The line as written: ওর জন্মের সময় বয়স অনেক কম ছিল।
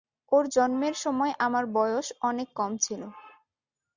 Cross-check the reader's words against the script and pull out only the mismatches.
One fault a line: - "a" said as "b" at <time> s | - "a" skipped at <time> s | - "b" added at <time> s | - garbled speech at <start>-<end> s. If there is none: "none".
- "আমার" added at 1.4 s